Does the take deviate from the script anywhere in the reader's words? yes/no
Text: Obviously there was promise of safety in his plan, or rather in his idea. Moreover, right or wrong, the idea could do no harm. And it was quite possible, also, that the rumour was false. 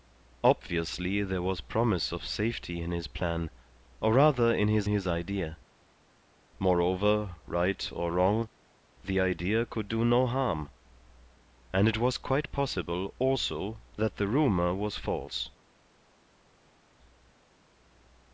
yes